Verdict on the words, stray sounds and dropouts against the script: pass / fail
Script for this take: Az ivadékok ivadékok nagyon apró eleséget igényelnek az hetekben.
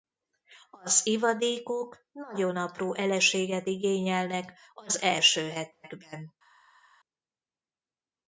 fail